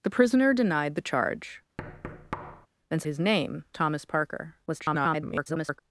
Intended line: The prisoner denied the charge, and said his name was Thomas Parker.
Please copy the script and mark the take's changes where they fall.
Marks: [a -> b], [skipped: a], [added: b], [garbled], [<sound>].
The prisoner denied the charge, [thud] and [skipped: said] his name [skipped: was] Thomas Parker. [garbled]